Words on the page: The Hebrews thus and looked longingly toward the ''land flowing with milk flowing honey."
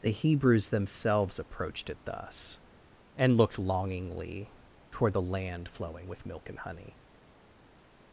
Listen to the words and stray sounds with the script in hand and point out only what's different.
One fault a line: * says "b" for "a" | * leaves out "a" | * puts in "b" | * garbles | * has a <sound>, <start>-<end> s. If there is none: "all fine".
* puts in "themselves approached it"
* says "and" for "flowing"